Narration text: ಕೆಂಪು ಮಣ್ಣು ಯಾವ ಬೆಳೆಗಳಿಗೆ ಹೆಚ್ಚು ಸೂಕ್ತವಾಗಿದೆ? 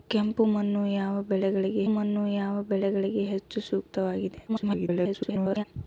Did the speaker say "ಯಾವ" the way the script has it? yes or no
yes